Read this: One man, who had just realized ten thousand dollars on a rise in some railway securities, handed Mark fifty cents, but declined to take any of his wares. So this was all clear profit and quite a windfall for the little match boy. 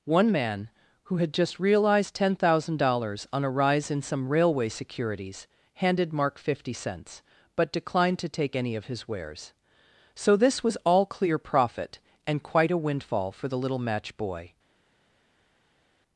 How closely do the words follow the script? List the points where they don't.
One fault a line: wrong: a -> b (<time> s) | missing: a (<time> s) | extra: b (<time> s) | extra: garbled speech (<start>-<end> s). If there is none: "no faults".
no faults